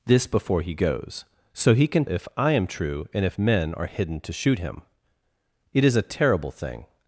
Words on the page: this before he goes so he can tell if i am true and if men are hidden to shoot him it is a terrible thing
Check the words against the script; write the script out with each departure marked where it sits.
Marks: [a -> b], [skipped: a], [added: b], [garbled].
this before he goes so he can [skipped: tell] if i am true and if men are hidden to shoot him it is a terrible thing